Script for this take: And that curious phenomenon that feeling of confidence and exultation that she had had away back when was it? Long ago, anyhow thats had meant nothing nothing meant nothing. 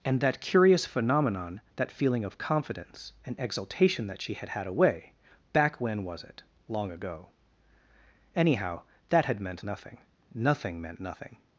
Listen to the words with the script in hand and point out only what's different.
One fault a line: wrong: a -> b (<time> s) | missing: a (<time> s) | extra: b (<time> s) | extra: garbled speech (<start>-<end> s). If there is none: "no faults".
wrong: thats -> that (9.1 s)